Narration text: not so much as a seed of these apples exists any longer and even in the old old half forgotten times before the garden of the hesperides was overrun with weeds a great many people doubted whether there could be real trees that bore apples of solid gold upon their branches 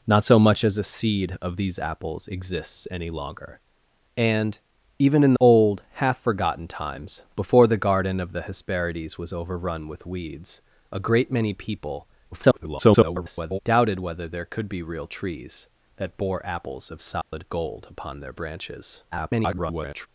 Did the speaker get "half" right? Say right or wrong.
right